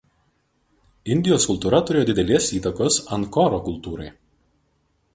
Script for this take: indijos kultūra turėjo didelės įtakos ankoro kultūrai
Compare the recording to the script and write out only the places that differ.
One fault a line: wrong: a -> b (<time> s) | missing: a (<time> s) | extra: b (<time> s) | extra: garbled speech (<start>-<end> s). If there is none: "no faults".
no faults